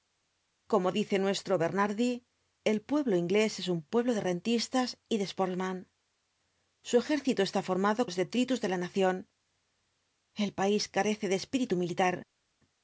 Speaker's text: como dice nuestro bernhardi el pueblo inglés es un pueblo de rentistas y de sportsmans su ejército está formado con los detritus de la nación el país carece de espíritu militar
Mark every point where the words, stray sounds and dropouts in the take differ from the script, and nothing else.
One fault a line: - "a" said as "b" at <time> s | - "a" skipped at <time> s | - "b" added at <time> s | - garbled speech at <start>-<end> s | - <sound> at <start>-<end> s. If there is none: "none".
- "con" skipped at 8.0 s